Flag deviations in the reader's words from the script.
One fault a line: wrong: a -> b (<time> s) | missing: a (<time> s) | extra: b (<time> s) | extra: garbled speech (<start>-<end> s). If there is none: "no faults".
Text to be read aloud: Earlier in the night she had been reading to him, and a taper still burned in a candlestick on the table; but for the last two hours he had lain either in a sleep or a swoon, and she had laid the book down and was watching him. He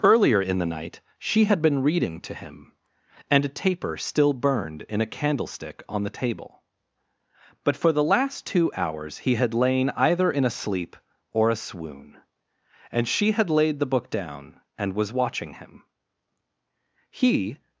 no faults